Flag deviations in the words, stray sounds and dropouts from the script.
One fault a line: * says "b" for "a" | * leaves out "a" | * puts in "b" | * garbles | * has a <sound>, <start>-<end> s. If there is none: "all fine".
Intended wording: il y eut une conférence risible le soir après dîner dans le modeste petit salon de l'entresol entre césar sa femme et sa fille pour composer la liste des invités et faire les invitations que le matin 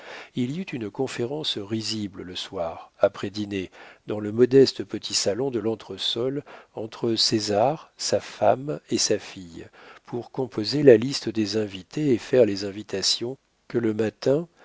all fine